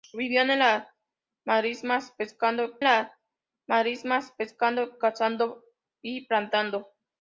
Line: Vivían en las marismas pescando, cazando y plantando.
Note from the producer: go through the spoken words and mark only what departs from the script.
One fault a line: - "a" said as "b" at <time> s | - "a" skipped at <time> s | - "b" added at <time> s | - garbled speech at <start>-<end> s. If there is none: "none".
- "las marismas pescando" added at 2.8 s